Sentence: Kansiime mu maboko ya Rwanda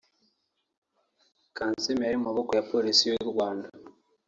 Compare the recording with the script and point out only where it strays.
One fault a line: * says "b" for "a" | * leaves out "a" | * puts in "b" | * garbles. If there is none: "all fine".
* puts in "yari"
* puts in "Polisi y'u"